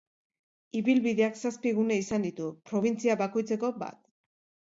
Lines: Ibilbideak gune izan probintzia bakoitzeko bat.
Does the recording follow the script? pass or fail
fail